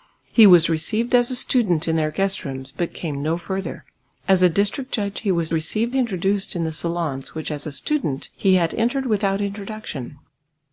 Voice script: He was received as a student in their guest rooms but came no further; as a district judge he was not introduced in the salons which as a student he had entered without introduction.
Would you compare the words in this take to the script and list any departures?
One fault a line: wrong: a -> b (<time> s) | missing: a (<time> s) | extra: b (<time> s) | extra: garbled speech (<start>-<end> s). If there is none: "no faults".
wrong: not -> received (5.5 s)